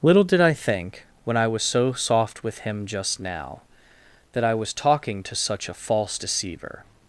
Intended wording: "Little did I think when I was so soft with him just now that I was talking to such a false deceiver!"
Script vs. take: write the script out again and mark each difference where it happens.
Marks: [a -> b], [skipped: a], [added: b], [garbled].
"Little did I think when I was so soft with him just now that I was talking to such a false deceiver!"